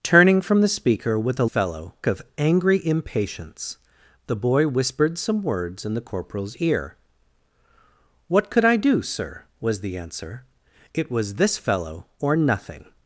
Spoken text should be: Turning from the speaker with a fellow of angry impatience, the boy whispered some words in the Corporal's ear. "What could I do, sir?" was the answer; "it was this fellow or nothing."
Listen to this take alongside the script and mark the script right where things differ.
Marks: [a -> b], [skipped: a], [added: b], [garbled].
Turning from the speaker with a fellow of angry impatience, the boy whispered some words in the Corporal's ear. "What could I do, sir?" was the answer; "it was this fellow or nothing."